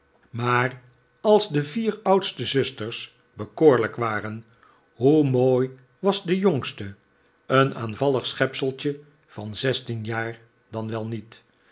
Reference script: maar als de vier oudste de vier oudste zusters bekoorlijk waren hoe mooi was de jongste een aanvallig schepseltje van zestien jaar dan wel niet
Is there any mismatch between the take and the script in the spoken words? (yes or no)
yes